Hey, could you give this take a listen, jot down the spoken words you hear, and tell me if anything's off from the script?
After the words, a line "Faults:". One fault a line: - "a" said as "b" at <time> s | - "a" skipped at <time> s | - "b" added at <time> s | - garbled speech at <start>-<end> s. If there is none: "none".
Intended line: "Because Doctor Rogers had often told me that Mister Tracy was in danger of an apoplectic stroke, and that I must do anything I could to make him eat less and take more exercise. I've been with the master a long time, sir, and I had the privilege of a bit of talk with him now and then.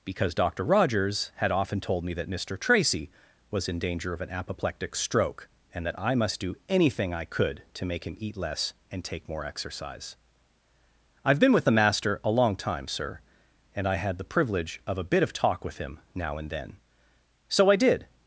"Because Doctor Rogers had often told me that Mister Tracy was in danger of an apoplectic stroke, and that I must do anything I could to make him eat less and take more exercise. I've been with the master a long time, sir, and I had the privilege of a bit of talk with him now and then. So I did
Faults:
- "So I did" added at 17.5 s